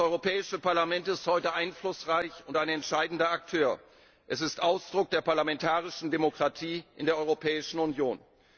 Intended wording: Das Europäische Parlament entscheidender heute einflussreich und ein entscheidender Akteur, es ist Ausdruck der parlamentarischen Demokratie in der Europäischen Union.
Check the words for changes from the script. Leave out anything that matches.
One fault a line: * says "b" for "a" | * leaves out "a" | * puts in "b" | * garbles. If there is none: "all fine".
* says "ist" for "entscheidender"